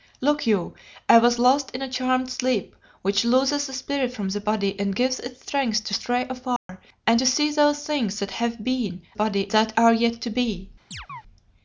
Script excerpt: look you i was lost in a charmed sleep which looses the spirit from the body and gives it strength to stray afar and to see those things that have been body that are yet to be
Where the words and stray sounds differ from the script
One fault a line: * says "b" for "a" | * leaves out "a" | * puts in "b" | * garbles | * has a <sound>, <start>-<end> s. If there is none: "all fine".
* has a dropout, 6.6-6.7 s
* has a chirp, 10.9-11.2 s